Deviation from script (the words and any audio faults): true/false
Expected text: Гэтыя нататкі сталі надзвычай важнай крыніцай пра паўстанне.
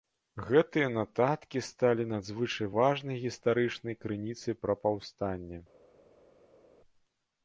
true